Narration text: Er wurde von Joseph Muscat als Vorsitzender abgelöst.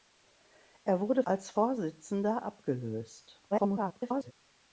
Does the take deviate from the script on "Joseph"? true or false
true